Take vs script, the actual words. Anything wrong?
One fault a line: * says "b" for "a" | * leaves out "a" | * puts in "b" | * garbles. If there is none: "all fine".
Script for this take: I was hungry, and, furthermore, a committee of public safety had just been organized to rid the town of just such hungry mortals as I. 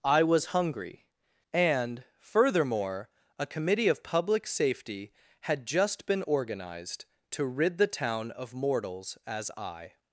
* leaves out "just such hungry"